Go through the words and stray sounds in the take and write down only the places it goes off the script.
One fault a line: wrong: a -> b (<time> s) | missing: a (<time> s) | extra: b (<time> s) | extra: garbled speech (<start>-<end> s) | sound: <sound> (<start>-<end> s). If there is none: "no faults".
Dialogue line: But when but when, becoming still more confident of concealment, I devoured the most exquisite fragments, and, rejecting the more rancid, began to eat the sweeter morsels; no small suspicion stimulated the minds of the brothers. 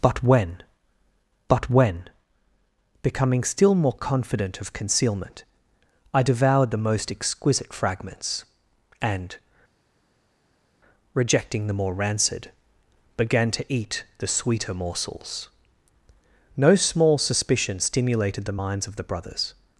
no faults